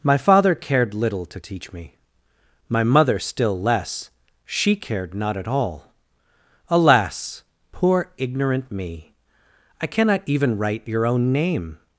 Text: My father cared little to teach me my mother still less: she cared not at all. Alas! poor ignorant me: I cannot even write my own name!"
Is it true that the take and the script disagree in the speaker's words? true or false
true